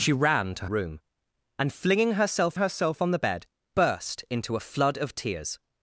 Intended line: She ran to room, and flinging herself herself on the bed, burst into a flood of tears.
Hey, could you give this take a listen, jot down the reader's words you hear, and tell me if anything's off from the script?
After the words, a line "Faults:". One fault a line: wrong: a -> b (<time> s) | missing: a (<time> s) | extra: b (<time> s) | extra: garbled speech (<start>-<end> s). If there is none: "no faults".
She ran to room, and flinging herself herself on the bed, burst into a flood of tears.
Faults:
no faults